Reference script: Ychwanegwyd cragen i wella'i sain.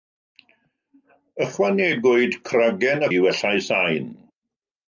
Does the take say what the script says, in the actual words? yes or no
yes